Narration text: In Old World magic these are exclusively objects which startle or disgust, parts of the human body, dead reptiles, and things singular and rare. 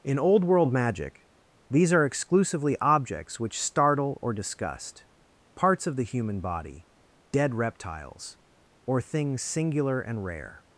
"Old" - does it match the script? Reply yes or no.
yes